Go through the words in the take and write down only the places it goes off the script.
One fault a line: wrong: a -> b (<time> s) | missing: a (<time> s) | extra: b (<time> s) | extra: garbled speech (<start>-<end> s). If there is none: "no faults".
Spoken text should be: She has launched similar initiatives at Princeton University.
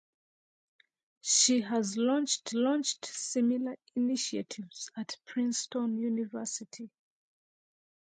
extra: launched (2.5 s)